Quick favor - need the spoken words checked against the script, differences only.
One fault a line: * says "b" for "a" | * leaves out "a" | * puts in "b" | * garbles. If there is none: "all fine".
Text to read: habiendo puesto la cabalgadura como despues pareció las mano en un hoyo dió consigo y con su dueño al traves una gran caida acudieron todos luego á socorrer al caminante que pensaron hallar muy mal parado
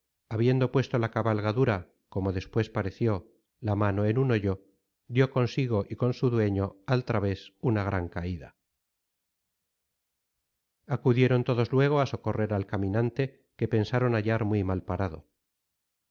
* says "la" for "las"